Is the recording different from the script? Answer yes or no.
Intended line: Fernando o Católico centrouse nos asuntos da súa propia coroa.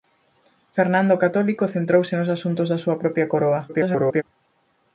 yes